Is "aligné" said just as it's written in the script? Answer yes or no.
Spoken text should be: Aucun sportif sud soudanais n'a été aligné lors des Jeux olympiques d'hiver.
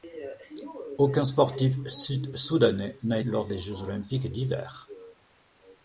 no